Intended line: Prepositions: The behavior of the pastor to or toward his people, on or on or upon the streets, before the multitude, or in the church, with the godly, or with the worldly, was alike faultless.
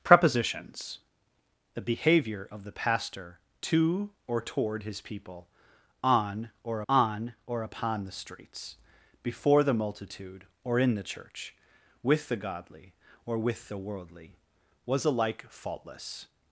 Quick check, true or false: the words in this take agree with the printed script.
true